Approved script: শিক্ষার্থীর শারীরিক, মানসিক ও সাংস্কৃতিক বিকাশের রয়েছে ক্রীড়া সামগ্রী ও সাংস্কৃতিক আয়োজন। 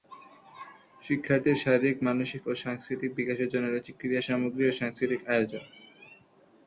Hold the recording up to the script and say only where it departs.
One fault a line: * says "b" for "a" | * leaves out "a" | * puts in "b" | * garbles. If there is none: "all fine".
* puts in "জন্য"